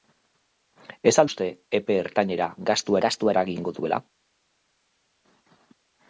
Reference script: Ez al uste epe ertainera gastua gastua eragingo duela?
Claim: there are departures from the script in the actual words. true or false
false